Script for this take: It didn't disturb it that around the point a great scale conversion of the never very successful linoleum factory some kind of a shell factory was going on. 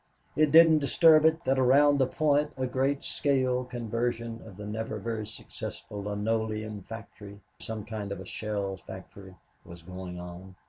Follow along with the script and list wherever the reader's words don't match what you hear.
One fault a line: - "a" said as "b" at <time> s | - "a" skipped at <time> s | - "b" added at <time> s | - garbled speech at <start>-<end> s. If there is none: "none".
none